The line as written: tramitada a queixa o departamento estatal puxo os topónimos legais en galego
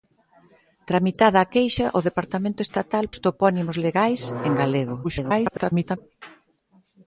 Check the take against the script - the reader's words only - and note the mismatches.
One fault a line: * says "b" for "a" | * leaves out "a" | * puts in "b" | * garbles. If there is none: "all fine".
* leaves out "puxo"
* garbles